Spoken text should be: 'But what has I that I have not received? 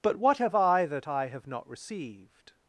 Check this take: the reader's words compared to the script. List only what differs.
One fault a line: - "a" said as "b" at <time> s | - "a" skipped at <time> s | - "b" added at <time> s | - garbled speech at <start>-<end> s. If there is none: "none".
- "has" said as "have" at 0.4 s